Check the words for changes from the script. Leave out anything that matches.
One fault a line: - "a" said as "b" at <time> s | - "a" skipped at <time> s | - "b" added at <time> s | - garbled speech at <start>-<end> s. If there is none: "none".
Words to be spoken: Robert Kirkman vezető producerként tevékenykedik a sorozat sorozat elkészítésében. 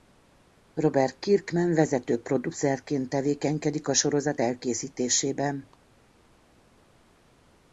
- "sorozat" skipped at 4.4 s